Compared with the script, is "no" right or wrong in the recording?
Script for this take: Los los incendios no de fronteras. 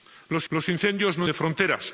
right